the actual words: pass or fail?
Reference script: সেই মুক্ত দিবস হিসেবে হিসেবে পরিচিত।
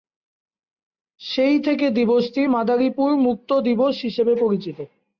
fail